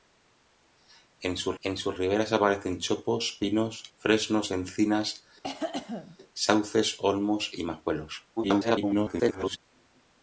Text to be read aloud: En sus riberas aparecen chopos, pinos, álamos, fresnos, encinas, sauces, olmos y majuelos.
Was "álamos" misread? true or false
true